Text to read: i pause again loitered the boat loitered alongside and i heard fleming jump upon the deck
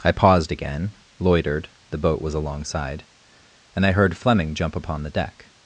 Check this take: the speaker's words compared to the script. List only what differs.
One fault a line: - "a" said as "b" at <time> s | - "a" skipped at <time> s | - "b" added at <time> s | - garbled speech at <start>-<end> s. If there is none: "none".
- "pause" said as "paused" at 0.1 s
- "loitered" said as "was" at 2.2 s